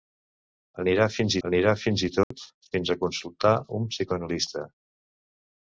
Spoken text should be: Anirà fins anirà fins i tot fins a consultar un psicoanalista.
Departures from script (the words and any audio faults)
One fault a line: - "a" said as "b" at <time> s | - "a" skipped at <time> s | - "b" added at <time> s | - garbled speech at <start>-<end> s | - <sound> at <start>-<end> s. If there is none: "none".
- dropout at 2.2-2.3 s